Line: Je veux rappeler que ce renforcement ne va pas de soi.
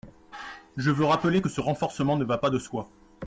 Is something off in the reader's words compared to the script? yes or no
no